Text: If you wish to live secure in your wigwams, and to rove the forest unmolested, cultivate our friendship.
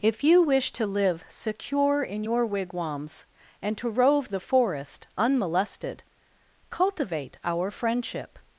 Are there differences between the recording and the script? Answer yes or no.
no